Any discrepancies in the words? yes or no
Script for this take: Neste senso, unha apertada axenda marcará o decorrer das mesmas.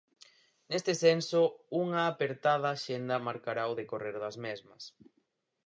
no